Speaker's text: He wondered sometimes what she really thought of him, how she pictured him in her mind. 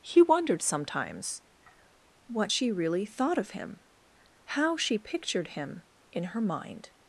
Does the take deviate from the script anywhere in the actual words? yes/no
no